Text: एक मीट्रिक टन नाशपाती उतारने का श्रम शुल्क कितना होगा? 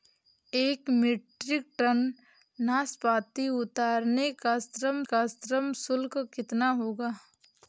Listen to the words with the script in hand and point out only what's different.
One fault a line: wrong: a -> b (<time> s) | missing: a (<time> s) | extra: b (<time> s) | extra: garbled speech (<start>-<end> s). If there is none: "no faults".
extra: का श्रम (5.1 s)